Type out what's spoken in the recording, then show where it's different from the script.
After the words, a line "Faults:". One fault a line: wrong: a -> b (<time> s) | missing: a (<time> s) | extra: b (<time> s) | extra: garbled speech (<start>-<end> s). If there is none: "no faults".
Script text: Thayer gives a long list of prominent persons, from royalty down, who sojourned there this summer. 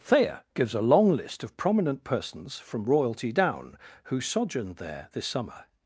Thayer gives a long list of prominent persons, from royalty down, who sojourned there this summer.
Faults:
no faults